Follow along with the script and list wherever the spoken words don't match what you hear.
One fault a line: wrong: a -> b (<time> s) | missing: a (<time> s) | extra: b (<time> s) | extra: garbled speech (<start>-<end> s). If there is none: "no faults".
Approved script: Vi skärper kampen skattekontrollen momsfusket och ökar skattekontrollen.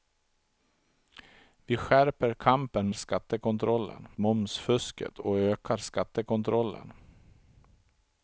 no faults